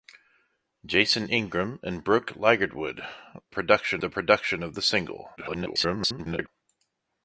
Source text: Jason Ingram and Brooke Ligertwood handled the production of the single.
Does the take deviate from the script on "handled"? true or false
true